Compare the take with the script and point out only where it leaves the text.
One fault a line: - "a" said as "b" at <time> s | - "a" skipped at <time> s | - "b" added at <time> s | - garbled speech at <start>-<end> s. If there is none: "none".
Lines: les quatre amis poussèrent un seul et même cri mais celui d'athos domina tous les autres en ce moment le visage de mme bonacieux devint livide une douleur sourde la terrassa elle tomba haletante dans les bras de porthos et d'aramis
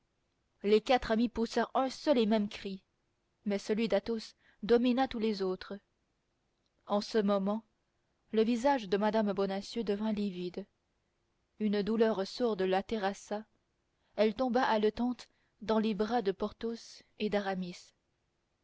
none